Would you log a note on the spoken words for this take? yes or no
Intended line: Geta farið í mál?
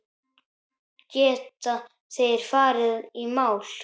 yes